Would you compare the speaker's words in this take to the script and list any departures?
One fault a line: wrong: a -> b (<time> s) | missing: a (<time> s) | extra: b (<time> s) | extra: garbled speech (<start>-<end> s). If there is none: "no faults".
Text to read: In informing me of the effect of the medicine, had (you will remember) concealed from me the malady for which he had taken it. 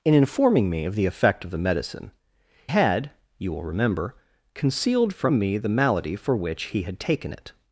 no faults